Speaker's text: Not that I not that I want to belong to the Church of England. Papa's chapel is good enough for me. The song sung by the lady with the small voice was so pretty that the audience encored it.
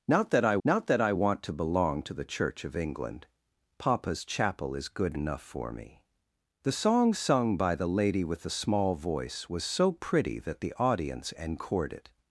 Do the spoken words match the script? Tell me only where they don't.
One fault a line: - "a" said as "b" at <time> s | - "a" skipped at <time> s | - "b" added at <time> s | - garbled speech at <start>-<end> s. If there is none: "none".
none